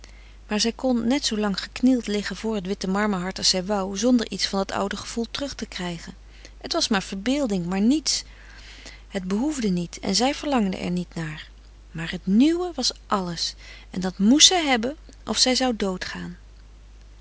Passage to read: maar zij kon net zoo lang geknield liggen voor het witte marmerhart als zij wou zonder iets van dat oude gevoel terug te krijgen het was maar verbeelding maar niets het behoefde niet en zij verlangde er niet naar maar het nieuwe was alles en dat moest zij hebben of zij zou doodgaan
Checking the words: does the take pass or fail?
pass